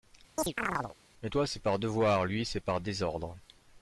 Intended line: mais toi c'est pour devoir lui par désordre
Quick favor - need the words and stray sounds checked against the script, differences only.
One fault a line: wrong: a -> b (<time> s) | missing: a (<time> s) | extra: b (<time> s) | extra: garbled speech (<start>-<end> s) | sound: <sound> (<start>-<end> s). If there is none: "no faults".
sound: chirp (0.4-1.0 s)
wrong: pour -> par (1.6 s)
extra: c'est (2.4 s)